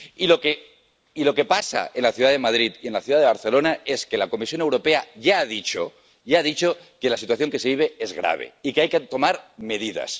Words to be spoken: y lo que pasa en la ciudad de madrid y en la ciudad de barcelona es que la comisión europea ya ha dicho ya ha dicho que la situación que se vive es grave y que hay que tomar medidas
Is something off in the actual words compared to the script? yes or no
no